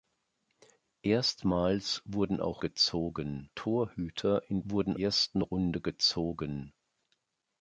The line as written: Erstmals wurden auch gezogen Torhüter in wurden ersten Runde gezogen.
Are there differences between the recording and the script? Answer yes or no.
no